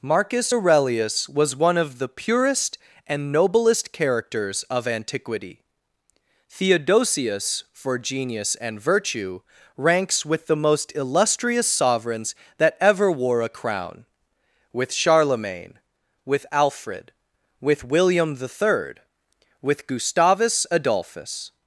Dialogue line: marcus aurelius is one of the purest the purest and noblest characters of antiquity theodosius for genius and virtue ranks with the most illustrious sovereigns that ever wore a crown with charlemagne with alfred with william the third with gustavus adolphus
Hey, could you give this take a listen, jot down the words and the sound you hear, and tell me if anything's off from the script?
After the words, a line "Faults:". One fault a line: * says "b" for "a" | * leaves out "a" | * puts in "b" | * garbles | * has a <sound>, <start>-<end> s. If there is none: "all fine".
marcus aurelius was one of the purest and noblest characters of antiquity theodosius for genius and virtue ranks with the most illustrious sovereigns that ever wore a crown with charlemagne with alfred with william the third with gustavus adolphus
Faults:
* says "was" for "is"
* leaves out "the purest"